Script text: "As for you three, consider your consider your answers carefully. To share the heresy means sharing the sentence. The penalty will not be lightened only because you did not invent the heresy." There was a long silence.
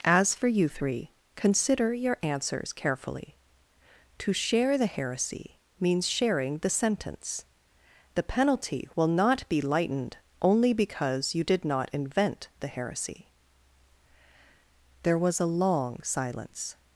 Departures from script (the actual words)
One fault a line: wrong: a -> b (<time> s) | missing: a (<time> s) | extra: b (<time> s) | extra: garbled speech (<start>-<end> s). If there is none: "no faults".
missing: consider your (2.2 s)